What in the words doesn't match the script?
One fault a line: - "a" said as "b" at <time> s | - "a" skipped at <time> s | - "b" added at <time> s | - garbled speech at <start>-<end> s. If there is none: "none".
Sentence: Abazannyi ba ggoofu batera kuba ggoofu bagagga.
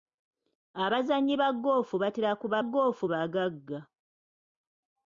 none